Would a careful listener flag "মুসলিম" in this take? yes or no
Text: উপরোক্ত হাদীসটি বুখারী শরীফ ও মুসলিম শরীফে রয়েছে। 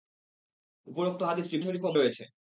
yes